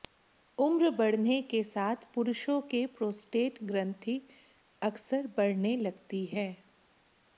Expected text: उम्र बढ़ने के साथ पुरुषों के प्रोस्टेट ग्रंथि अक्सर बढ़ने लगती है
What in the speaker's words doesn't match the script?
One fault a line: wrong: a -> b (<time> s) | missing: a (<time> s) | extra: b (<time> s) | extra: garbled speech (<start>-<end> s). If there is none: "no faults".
no faults